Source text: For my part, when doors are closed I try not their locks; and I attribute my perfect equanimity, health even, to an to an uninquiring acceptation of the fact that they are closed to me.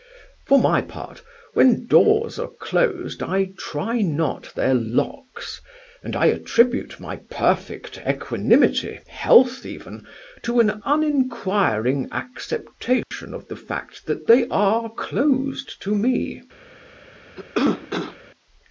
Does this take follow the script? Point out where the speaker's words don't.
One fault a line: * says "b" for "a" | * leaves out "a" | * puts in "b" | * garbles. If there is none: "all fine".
* leaves out "to an"